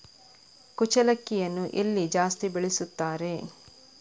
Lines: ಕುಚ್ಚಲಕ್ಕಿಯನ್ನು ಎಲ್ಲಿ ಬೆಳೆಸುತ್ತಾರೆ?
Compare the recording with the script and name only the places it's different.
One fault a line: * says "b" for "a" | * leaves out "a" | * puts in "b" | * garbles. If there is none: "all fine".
* puts in "ಜಾಸ್ತಿ"